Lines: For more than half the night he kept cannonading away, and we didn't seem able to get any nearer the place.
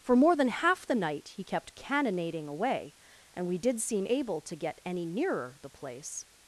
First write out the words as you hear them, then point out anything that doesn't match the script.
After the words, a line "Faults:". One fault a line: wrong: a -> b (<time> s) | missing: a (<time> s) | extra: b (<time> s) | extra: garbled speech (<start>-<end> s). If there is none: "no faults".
For more than half the night he kept cannonading away, and we did seem able to get any nearer the place.
Faults:
wrong: didn't -> did (3.6 s)